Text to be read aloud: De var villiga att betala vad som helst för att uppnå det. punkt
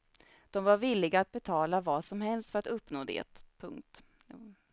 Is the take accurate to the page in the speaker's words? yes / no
yes